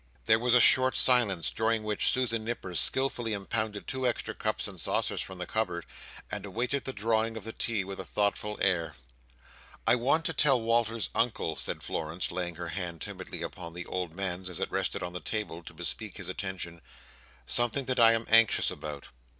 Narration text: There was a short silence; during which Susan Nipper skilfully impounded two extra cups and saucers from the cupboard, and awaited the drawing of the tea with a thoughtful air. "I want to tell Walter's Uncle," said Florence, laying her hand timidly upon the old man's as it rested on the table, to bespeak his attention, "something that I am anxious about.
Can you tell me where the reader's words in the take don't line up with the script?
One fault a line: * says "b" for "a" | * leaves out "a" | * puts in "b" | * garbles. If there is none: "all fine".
all fine